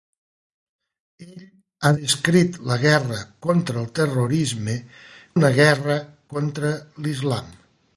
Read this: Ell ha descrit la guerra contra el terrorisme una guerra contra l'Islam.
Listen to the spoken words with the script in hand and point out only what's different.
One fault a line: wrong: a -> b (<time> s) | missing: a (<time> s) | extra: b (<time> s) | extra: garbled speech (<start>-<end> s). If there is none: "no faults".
no faults